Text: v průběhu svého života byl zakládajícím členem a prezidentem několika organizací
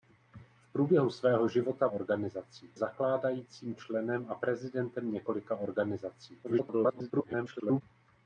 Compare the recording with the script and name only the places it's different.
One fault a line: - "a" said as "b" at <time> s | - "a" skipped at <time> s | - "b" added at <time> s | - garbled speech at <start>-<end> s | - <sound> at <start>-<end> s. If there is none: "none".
- "byl" said as "organizací" at 1.9 s
- garbled speech at 6.4-7.8 s